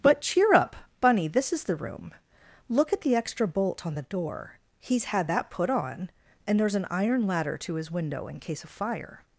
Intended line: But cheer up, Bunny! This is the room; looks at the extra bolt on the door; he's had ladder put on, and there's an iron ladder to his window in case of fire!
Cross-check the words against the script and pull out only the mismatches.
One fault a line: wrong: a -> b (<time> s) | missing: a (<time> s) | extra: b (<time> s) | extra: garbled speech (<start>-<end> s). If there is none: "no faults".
wrong: looks -> look (2.7 s)
wrong: ladder -> that (5.3 s)